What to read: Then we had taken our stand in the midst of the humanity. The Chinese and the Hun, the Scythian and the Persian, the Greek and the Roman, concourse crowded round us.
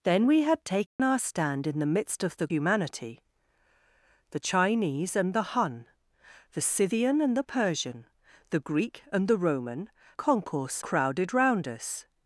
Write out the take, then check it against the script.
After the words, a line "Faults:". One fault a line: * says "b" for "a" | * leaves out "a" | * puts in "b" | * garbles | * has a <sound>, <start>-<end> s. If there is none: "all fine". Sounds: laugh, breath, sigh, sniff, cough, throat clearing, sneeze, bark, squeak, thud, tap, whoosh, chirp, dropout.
Then we had taken our stand in the midst of the humanity. The Chinese and the Hun, the Scythian and the Persian, the Greek and the Roman, concourse crowded round us.
Faults:
* has a dropout, 0.9-1.0 s